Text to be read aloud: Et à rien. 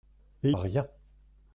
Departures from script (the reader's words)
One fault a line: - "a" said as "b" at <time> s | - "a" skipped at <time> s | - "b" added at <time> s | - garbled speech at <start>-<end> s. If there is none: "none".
none